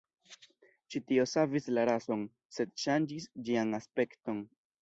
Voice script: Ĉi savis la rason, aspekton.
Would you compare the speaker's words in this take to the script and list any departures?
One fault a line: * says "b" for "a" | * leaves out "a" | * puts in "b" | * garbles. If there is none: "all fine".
* puts in "tio"
* puts in "sed ŝanĝis ĝian"